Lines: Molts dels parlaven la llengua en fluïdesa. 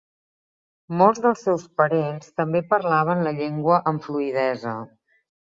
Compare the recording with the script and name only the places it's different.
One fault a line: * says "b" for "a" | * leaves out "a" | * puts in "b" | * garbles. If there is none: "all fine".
* puts in "seus parents també"
* says "amb" for "en"